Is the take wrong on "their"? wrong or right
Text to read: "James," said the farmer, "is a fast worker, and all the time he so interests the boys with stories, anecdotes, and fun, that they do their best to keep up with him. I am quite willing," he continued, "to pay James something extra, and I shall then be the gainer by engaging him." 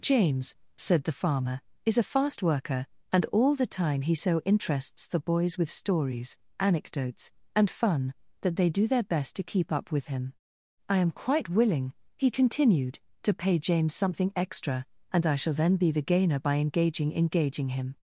right